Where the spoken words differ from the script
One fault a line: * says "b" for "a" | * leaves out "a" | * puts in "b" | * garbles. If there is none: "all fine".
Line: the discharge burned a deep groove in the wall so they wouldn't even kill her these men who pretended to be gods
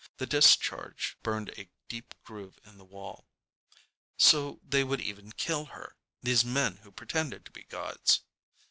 * says "would" for "wouldn't"